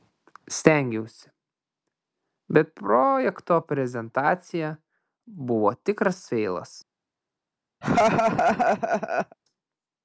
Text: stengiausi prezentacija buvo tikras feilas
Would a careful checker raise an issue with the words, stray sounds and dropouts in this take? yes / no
yes